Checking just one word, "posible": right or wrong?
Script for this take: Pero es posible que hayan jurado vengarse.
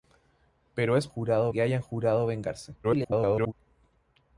wrong